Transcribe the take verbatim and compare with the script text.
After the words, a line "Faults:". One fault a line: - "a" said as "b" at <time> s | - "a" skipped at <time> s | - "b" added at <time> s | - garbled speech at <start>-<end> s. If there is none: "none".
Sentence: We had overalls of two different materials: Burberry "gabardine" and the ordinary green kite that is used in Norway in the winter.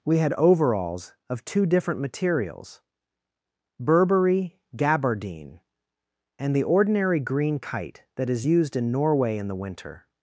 We had overalls of two different materials: Burberry "gabardine" and the ordinary green kite that is used in Norway in the winter.
Faults:
none